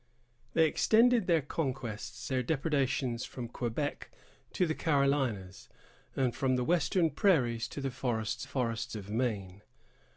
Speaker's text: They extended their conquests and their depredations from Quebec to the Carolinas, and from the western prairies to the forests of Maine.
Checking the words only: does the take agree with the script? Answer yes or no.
no